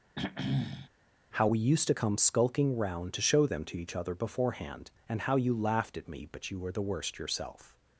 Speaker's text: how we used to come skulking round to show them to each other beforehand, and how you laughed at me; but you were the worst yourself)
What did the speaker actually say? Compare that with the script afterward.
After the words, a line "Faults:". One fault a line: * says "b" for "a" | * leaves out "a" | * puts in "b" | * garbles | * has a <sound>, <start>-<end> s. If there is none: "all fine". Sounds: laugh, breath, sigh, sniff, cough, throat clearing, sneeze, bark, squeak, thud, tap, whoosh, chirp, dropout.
how we used to come skulking round to show them to each other beforehand, and how you laughed at me; but you were the worst yourself)
Faults:
* has a throat clearing, 0.2-0.9 s